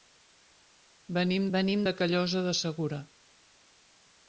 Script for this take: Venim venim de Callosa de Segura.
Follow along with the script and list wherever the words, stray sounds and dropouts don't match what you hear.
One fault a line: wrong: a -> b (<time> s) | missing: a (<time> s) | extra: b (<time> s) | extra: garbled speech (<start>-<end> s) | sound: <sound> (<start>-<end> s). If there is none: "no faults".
no faults